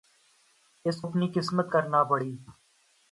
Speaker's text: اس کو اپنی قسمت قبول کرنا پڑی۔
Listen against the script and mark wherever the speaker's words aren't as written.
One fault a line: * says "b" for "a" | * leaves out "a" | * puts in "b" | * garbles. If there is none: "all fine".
* leaves out "کو"
* leaves out "قبول"